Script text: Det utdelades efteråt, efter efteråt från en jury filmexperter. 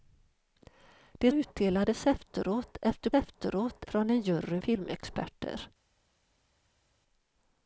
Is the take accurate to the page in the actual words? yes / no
yes